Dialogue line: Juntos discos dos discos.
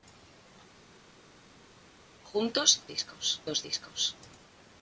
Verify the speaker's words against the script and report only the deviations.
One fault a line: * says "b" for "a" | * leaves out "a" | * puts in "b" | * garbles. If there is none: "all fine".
all fine